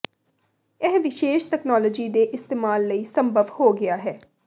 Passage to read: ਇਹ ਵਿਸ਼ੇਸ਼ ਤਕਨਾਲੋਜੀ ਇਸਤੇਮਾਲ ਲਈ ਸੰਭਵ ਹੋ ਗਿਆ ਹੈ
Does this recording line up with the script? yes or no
no